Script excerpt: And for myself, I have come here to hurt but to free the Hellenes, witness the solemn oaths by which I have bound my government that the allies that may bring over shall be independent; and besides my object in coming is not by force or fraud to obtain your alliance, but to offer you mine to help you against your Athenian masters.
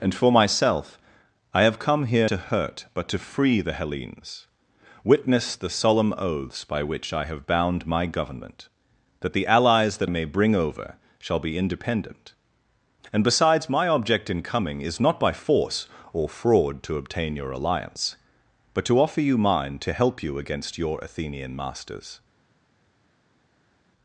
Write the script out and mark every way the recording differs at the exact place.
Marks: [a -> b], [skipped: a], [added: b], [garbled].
And for myself, I have come here to hurt but to free the Hellenes, witness the solemn oaths by which I have bound my government that the allies that may bring over shall be independent; and besides my object in coming is not by force or fraud to obtain your alliance, but to offer you mine to help you against your Athenian masters.